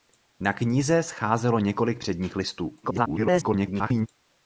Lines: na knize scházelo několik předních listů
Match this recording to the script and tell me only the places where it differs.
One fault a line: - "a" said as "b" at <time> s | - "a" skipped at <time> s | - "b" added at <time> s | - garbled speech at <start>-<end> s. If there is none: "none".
- garbled speech at 2.8-4.1 s